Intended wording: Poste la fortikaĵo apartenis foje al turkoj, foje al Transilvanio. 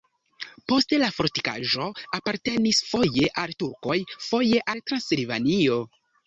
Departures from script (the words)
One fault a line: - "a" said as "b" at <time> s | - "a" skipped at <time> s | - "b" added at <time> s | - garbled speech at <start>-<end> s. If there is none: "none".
none